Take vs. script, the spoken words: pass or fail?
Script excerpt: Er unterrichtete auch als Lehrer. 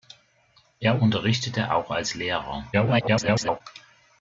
fail